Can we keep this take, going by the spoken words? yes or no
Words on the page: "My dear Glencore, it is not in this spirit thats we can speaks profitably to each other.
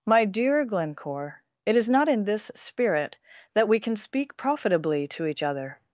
no